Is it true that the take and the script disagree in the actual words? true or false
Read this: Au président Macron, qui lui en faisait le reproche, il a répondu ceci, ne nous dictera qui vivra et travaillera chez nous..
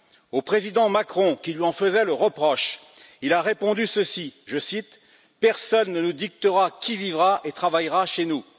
true